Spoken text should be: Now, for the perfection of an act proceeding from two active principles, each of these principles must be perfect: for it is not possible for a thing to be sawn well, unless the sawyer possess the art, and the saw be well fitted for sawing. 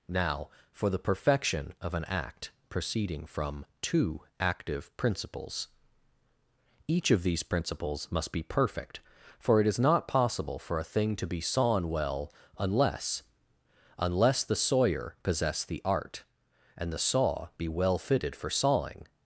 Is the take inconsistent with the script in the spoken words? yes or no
yes